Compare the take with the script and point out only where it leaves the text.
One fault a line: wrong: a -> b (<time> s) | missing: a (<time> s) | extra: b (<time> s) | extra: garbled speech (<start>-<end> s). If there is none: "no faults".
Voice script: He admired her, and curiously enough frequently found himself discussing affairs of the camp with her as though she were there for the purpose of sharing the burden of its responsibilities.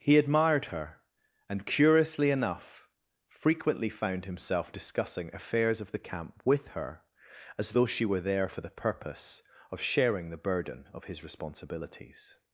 wrong: its -> his (11.0 s)